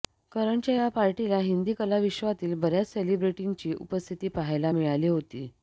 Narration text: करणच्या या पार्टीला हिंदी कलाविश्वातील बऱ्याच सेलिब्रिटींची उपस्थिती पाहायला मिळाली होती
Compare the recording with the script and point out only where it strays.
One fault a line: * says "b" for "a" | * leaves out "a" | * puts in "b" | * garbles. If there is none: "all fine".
all fine